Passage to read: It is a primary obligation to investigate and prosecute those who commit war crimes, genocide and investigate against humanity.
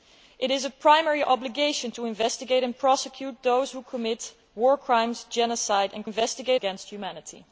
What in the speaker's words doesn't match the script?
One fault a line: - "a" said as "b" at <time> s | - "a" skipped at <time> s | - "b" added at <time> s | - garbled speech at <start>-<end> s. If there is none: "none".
none